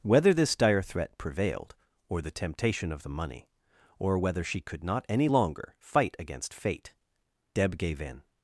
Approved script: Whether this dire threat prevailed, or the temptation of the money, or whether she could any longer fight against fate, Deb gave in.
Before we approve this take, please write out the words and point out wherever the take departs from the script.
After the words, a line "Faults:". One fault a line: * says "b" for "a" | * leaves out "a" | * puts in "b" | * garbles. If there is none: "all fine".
Whether this dire threat prevailed, or the temptation of the money, or whether she could not any longer fight against fate, Deb gave in.
Faults:
* puts in "not"